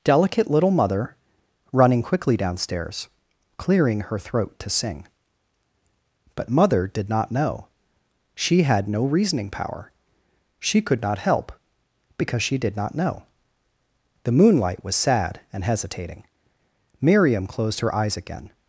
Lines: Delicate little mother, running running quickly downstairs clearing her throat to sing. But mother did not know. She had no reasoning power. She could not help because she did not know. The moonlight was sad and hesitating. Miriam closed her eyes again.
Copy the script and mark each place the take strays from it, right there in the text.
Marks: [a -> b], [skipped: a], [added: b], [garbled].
Delicate little mother, running [skipped: running] quickly downstairs clearing her throat to sing. But mother did not know. She had no reasoning power. She could not help because she did not know. The moonlight was sad and hesitating. Miriam closed her eyes again.